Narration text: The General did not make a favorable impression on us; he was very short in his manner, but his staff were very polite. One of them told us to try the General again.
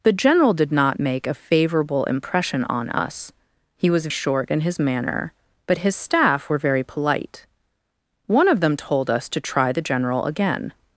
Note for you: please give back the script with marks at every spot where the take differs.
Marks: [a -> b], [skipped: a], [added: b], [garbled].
The General did not make a favorable impression on us; he was [skipped: very] short in his manner, but his staff were very polite. One of them told us to try the General again.